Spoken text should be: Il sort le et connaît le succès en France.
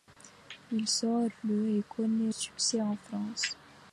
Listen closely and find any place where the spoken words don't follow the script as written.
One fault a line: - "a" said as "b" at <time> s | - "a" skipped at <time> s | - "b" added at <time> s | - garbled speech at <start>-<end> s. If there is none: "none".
- "le" skipped at 2.3 s